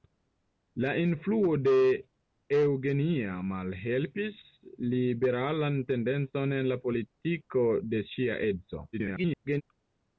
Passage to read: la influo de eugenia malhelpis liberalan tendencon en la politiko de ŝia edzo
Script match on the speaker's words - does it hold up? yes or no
no